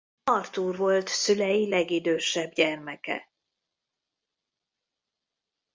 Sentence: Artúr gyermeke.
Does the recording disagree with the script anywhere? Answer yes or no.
yes